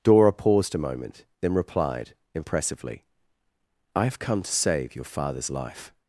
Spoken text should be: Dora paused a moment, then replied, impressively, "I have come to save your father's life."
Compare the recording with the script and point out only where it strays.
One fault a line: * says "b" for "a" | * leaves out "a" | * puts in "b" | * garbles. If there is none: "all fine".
all fine